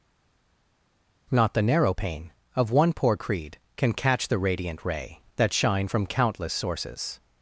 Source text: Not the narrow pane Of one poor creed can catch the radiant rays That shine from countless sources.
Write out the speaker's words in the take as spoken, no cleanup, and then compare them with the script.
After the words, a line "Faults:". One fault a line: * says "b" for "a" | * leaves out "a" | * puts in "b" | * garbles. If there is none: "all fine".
Not the narrow pane Of one poor creed can catch the radiant ray That shine from countless sources.
Faults:
* says "ray" for "rays"